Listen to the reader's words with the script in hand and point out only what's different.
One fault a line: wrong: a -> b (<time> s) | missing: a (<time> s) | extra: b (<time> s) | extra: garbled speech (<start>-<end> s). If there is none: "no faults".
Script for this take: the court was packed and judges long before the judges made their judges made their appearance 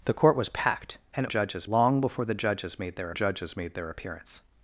no faults